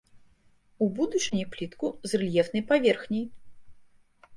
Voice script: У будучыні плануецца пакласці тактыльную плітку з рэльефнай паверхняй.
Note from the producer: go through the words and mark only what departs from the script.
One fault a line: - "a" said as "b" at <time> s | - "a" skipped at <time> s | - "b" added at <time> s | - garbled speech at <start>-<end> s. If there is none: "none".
- "плануецца пакласці тактыльную" skipped at 1.4 s